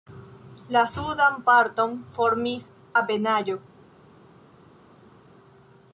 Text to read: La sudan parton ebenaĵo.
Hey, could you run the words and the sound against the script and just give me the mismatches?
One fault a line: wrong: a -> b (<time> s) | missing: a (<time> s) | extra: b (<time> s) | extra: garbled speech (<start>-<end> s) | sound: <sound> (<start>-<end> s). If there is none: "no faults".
extra: formis (2.2 s)